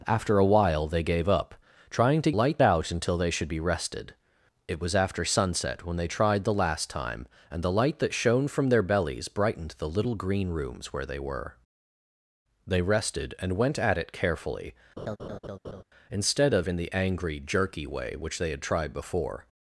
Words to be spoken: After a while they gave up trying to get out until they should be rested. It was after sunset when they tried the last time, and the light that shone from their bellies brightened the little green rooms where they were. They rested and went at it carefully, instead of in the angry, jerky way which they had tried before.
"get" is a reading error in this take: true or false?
true